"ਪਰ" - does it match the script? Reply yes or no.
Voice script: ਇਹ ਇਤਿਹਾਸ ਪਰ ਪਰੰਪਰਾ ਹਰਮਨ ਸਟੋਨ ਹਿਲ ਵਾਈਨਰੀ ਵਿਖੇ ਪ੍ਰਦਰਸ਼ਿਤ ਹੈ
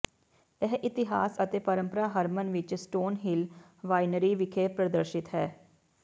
no